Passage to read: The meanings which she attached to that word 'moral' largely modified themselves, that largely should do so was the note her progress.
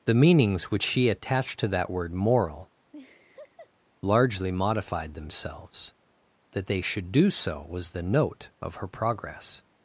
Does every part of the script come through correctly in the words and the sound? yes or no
no